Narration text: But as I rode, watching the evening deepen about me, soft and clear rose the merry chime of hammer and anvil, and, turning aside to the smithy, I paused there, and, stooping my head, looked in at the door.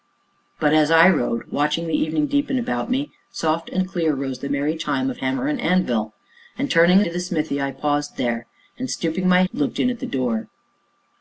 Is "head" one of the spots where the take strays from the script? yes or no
yes